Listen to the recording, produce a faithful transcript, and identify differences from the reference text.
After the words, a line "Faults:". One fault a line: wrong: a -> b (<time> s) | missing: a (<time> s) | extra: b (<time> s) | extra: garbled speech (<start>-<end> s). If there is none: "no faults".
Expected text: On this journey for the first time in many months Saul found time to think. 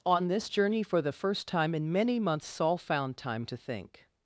On this journey for the first time in many months Saul found time to think.
Faults:
no faults